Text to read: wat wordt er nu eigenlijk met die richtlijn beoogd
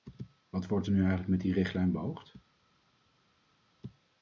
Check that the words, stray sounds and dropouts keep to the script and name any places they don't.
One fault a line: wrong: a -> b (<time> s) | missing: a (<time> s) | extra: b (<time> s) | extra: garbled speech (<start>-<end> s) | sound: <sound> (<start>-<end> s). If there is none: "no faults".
no faults